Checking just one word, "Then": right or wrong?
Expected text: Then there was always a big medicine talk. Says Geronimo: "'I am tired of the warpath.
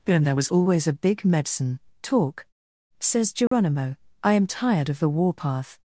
wrong